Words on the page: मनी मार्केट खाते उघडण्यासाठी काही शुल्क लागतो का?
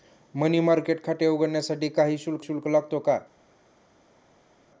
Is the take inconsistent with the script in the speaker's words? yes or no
yes